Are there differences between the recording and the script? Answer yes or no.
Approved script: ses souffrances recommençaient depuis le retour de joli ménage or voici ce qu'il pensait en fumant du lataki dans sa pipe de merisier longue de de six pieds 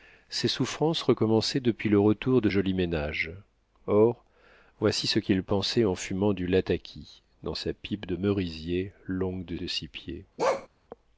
no